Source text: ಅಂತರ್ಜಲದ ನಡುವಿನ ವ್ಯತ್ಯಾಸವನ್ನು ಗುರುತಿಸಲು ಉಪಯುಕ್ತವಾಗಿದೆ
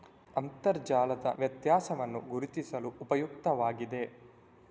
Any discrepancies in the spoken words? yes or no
yes